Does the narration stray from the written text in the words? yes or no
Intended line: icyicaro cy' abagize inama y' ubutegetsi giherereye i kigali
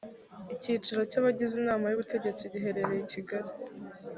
no